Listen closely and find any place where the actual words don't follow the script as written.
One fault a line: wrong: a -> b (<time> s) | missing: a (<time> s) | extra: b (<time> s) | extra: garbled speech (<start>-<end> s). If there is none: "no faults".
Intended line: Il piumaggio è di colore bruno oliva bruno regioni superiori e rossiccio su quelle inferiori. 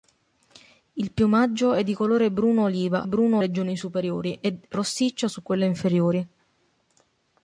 no faults